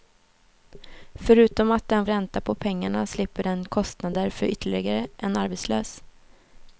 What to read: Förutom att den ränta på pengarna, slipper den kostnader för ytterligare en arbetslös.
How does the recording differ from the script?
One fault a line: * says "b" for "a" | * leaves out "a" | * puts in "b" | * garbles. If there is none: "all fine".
all fine